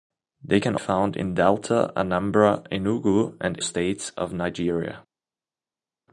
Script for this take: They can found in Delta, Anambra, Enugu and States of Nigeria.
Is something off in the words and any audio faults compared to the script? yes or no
no